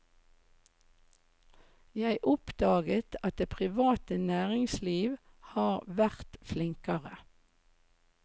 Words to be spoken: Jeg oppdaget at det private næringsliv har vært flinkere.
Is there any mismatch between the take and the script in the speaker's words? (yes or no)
no